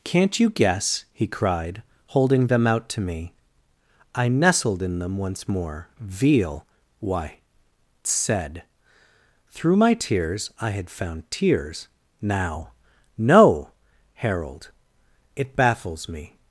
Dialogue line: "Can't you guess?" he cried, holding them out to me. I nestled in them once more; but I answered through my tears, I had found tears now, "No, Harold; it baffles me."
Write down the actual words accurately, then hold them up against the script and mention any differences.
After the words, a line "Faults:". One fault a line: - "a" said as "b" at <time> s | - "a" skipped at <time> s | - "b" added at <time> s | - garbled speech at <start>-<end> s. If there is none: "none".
"Can't you guess?" he cried, holding them out to me. I nestled in them once more; veal why said through my tears, I had found tears now, "No, Harold; it baffles me."
Faults:
- "but I answered" said as "veal why said" at 6.0 s